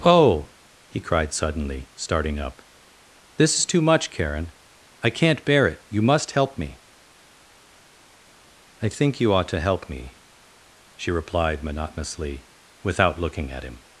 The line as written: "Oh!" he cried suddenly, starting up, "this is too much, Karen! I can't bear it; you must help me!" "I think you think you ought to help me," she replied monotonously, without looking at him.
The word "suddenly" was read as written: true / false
true